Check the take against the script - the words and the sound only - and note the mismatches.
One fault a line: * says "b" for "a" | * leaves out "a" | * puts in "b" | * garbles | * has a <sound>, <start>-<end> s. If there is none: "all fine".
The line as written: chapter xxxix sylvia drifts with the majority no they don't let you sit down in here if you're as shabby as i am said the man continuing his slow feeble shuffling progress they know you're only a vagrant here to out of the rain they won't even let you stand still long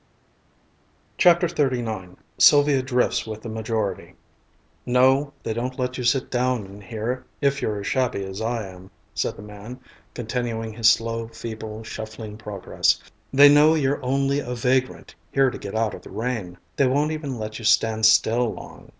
* puts in "get"